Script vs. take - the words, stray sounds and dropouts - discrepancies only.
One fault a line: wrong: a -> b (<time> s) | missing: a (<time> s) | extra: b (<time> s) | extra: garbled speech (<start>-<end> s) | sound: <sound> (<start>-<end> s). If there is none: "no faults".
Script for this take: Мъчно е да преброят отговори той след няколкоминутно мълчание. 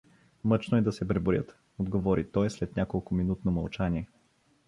extra: се (0.9 s)